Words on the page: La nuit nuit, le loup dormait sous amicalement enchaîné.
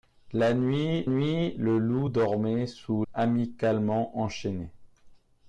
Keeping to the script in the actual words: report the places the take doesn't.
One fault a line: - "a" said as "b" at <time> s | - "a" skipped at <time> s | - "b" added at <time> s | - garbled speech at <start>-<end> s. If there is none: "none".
none